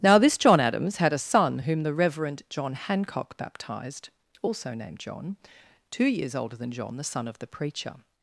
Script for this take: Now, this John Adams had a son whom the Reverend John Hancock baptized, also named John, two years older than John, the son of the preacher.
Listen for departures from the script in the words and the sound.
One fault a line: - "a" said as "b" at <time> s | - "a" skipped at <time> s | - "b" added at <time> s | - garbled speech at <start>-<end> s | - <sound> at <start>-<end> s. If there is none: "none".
none